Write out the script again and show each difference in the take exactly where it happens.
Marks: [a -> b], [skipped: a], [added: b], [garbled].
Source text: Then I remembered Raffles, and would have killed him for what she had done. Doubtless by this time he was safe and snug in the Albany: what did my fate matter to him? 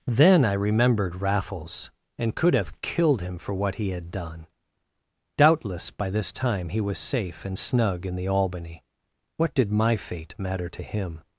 Then I remembered Raffles, and [would -> could] have killed him for what [she -> he] had done. Doubtless by this time he was safe and snug in the Albany: what did my fate matter to him?